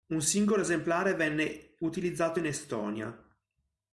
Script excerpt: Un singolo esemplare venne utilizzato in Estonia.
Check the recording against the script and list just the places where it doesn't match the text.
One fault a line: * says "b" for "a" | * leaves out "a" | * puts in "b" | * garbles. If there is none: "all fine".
all fine